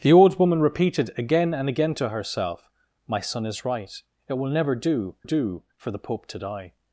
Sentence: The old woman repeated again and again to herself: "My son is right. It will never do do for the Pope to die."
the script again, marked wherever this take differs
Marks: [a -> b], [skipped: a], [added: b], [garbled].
The old woman repeated again and again to herself: "My son is right. It will never do do for the Pope to die."